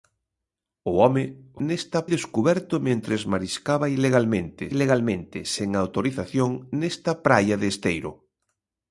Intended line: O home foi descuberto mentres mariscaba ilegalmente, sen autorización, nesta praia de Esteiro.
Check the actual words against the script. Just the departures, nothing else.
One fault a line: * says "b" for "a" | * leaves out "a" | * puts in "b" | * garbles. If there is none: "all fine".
* says "nesta" for "foi"
* puts in "ilegalmente"